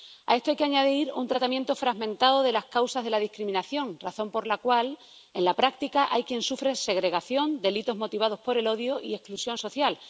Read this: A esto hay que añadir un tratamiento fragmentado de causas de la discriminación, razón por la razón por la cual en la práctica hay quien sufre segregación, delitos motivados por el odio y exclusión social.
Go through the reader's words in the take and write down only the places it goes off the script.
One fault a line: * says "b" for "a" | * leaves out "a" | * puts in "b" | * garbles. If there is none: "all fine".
* puts in "las"
* leaves out "razón por la"